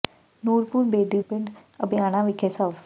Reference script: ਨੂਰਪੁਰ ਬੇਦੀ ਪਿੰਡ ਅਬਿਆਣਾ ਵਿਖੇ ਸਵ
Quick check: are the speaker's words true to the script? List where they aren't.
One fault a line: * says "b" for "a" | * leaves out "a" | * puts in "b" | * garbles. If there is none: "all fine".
all fine